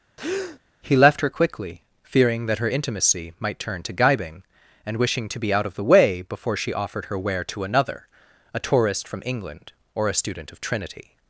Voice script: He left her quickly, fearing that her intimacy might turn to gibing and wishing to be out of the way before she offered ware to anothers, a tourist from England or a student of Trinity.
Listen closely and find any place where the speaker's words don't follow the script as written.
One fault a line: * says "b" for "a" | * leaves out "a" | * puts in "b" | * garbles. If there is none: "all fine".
* puts in "her"
* says "another" for "anothers"